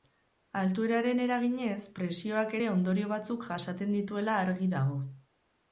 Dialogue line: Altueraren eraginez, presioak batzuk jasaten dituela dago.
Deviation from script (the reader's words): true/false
true